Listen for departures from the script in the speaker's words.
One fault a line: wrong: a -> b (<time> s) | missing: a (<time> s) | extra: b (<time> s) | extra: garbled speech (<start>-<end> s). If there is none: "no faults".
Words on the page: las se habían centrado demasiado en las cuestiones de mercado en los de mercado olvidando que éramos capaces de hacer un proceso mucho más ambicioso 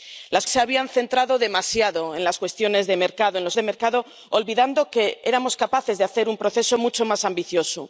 no faults